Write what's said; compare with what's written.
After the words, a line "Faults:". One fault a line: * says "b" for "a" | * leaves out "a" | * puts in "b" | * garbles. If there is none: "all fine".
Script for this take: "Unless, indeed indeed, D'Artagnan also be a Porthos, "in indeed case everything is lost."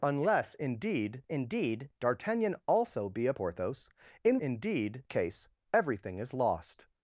"Unless, indeed indeed, D'Artagnan also be a Porthos, "in indeed case everything is lost."
Faults:
all fine